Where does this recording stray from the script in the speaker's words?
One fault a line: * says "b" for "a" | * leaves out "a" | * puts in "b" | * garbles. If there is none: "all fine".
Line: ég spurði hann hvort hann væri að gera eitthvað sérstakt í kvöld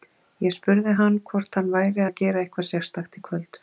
all fine